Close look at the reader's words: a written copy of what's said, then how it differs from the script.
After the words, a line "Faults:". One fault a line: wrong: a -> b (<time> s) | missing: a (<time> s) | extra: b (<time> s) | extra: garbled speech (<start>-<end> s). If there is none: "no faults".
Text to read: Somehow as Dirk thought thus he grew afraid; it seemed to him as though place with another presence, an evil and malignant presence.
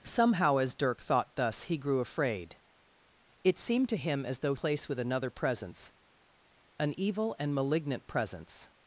Somehow as Dirk thought thus he grew afraid; it seemed to him as though place with another presence, an evil and malignant presence.
Faults:
no faults